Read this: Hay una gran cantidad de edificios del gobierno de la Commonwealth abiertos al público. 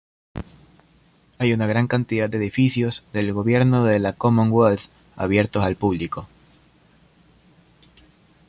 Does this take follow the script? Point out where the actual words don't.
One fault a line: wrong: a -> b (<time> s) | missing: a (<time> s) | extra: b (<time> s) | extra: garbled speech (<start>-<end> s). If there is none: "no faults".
no faults